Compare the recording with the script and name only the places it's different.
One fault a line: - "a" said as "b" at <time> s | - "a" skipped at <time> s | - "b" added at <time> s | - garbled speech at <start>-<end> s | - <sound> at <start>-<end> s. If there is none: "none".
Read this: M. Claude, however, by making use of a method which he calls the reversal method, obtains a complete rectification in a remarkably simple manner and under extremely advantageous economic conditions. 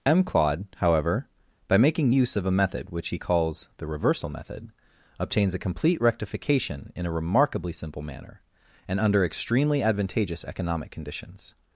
none